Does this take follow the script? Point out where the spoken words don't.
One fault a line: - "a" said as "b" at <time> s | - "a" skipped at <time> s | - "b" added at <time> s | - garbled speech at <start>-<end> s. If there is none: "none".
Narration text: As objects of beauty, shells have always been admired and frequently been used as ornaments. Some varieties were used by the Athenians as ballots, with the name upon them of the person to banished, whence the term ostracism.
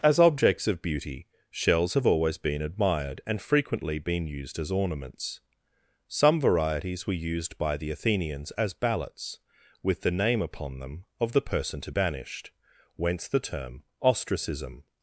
none